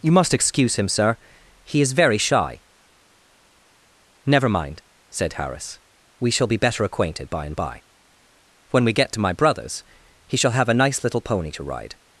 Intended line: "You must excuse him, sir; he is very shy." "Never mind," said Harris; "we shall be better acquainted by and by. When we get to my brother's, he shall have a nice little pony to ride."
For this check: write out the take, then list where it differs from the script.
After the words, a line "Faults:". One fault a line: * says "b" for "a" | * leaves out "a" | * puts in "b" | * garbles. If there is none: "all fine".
"You must excuse him, sir; he is very shy." "Never mind," said Harris; "we shall be better acquainted by and by. When we get to my brother's, he shall have a nice little pony to ride."
Faults:
all fine